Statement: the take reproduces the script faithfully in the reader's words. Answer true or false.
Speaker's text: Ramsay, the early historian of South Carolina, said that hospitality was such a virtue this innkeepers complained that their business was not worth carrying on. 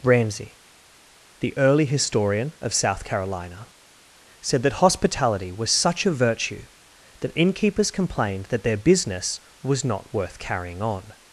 false